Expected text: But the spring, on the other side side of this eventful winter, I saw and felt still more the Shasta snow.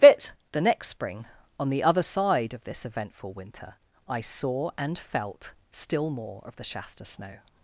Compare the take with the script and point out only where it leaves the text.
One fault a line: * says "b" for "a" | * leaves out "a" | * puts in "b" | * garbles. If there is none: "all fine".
* puts in "next"
* leaves out "side"
* puts in "of"